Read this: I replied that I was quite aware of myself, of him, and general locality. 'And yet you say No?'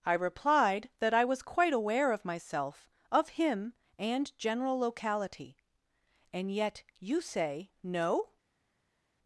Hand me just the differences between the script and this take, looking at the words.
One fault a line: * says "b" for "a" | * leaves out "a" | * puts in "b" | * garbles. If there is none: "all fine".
all fine